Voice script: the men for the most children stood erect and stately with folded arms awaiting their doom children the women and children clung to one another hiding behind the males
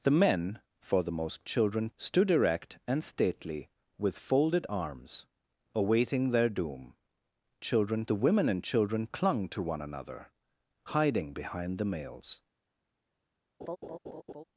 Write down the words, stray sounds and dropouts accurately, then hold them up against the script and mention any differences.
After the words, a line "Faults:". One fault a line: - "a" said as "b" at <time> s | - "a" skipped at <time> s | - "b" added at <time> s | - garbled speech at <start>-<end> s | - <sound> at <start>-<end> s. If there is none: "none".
the men for the most children stood erect and stately with folded arms awaiting their doom children the women and children clung to one another hiding behind the males
Faults:
- laugh at 13.6-14.4 s